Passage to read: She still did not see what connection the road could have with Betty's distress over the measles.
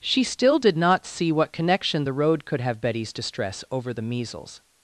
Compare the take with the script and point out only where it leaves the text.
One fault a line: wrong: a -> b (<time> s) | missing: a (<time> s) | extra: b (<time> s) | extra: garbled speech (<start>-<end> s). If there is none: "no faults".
missing: with (2.8 s)